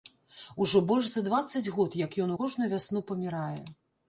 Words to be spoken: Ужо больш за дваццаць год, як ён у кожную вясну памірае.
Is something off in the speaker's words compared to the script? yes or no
no